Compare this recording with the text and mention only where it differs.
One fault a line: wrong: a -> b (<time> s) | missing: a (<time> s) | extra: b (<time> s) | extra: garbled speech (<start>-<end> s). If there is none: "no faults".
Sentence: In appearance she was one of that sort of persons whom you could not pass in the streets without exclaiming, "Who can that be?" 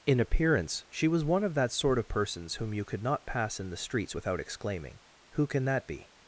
no faults